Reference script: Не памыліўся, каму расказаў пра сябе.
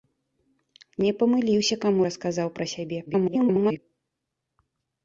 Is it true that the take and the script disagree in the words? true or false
true